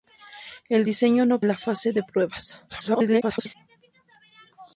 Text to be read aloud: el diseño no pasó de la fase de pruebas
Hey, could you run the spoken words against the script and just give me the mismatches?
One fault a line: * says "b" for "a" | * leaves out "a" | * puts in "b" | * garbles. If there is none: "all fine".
* leaves out "pasó de"
* garbles